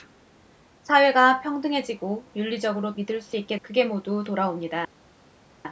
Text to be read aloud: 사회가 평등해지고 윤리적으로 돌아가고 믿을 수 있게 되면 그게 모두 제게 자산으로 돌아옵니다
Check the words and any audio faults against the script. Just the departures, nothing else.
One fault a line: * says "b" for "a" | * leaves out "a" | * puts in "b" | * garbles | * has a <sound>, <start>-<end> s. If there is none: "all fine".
* leaves out "돌아가고"
* leaves out "되면"
* leaves out "제게 자산으로"